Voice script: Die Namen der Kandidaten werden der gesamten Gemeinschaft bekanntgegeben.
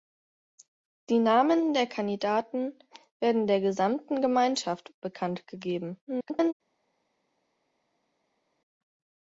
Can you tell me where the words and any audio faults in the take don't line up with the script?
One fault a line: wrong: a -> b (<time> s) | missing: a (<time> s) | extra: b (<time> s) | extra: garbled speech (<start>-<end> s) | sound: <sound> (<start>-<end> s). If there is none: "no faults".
extra: garbled speech (6.1-6.5 s)